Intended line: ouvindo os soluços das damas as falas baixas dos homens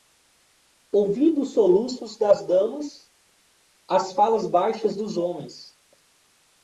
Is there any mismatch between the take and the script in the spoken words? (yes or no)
no